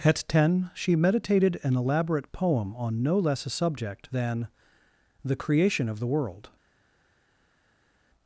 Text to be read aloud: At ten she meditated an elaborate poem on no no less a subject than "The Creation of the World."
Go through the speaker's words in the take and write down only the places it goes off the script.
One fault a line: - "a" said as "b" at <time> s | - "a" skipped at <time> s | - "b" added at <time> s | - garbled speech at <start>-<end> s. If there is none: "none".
- "no" skipped at 3.2 s